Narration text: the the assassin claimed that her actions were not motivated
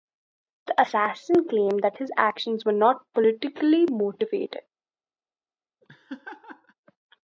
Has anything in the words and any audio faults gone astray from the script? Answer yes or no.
yes